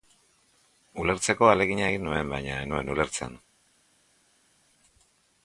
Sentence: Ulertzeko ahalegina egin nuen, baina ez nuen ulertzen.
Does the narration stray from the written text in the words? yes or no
no